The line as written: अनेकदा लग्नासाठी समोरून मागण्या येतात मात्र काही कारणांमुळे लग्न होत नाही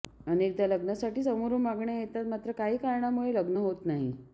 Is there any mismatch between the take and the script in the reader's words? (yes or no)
no